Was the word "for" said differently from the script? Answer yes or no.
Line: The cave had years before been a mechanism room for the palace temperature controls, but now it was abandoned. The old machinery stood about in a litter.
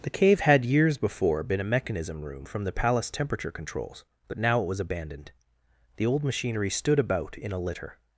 yes